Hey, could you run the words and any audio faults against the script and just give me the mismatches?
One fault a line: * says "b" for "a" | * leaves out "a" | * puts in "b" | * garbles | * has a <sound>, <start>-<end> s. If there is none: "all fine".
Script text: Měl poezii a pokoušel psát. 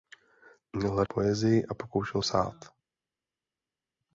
all fine